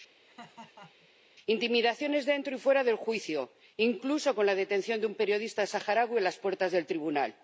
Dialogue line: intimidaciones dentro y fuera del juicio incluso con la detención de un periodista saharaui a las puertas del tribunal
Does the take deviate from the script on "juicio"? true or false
false